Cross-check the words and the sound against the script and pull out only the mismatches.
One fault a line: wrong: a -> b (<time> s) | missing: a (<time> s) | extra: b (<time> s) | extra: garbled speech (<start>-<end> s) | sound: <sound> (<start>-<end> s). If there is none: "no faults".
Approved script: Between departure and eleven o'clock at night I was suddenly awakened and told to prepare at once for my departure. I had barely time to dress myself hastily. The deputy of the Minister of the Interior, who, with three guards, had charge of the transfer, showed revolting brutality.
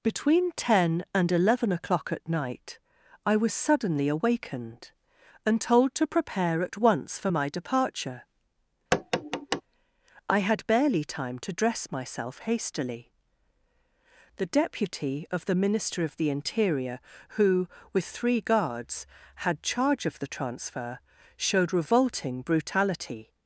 wrong: departure -> ten (0.5 s)
sound: tap (8.9-9.6 s)